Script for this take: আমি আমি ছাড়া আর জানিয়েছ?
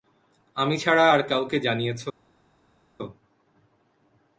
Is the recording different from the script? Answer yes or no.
yes